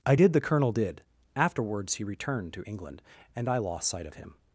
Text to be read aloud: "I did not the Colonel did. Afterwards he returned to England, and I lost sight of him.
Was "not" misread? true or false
true